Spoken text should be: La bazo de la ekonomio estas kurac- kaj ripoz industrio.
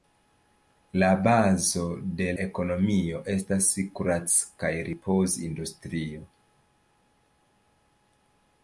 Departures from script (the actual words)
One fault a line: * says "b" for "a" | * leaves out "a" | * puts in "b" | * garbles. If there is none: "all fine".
* leaves out "la"